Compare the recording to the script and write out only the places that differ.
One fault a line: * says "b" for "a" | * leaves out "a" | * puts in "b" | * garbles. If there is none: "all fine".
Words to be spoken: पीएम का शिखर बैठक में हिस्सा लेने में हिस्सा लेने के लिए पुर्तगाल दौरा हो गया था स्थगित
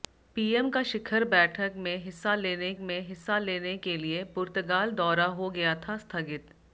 all fine